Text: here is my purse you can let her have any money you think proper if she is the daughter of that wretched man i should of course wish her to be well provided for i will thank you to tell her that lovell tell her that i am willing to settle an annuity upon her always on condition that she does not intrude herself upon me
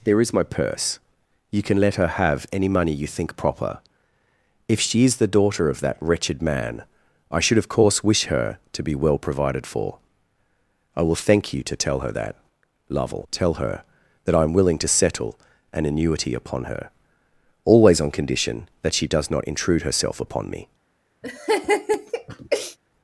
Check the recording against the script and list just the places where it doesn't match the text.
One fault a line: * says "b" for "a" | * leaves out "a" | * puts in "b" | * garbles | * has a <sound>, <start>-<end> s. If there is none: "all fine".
* says "there" for "here"
* has a laugh, 21.2-22.8 s